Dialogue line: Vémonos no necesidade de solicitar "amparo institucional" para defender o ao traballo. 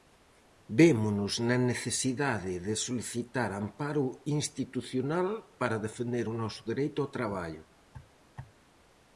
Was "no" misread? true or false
true